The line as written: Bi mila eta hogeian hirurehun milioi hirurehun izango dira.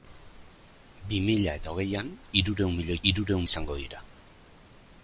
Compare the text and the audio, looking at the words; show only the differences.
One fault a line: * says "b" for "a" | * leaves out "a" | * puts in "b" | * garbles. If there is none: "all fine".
all fine